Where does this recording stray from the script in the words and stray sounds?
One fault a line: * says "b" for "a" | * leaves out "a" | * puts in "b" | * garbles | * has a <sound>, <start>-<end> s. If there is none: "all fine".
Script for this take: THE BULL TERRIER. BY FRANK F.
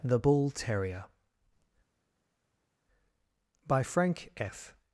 all fine